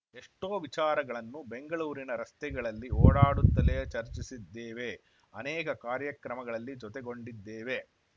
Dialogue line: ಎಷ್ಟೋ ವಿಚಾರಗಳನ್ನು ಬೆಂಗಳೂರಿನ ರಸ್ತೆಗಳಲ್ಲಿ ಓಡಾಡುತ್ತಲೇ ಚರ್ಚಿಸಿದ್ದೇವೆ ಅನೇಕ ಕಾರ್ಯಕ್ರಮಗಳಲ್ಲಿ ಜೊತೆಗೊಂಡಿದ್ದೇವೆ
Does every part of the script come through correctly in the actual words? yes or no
yes